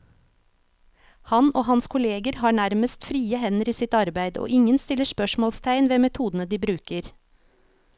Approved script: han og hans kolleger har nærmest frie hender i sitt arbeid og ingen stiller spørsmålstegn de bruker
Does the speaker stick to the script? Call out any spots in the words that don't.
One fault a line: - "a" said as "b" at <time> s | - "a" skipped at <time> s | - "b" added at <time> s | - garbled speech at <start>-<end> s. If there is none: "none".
- "ved metodene" added at 5.9 s